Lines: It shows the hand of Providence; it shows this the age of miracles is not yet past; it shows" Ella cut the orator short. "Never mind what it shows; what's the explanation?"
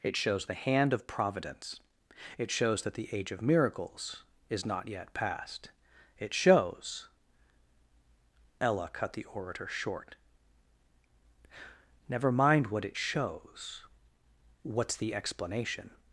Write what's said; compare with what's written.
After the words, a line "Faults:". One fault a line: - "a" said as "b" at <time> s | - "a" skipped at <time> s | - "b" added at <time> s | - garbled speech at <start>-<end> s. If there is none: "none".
It shows the hand of Providence; it shows that the age of miracles is not yet past; it shows" Ella cut the orator short. "Never mind what it shows; what's the explanation?"
Faults:
- "this" said as "that" at 2.8 s